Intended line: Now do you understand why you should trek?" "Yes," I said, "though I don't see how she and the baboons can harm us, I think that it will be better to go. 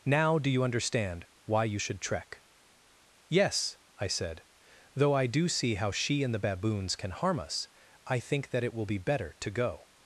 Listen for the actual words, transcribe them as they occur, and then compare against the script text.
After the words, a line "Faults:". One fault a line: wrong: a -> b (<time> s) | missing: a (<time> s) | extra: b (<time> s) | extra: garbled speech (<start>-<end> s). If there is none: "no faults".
Now do you understand why you should trek?" "Yes," I said, "though I do see how she and the baboons can harm us, I think that it will be better to go.
Faults:
wrong: don't -> do (5.3 s)